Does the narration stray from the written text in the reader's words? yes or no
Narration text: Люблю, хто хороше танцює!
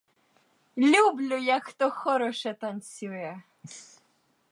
yes